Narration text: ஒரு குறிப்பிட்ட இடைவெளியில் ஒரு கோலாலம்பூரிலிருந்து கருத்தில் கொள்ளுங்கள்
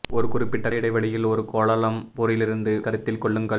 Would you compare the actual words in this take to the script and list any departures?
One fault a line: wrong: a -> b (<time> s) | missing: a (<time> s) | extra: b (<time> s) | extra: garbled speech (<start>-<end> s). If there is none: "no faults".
no faults